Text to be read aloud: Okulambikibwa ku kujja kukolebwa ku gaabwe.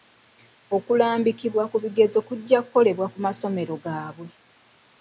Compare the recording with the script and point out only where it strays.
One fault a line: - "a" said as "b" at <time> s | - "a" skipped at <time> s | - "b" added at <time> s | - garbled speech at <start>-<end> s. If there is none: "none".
- "bigezo" added at 1.8 s
- "masomero" added at 3.2 s